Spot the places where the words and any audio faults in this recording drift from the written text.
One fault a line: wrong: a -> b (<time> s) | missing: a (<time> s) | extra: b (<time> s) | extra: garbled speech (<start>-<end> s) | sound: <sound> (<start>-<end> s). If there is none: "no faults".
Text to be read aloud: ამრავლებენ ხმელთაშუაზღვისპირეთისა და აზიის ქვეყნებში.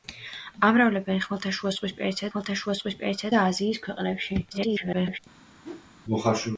extra: ხმელთაშუაზღვისპირეთისა (2.3 s)
extra: garbled speech (4.5-5.2 s)
sound: whoosh (5.6-5.9 s)